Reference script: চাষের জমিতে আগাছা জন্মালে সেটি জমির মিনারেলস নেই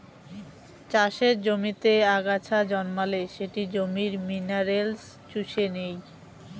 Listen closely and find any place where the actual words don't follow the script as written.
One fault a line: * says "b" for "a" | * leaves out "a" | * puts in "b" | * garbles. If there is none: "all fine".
* puts in "চুষে"